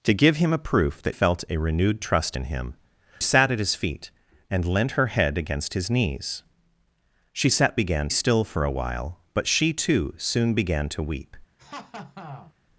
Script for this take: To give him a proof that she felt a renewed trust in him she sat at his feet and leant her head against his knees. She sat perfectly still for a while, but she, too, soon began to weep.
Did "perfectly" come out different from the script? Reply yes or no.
yes